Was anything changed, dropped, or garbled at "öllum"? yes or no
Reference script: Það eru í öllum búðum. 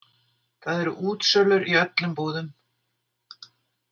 no